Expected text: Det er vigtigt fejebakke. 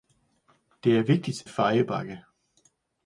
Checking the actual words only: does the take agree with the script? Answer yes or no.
yes